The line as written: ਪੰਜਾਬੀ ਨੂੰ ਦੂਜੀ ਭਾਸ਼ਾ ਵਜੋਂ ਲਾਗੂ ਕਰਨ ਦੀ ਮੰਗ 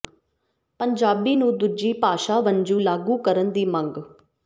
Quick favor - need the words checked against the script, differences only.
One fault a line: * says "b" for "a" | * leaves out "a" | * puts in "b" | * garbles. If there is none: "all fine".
all fine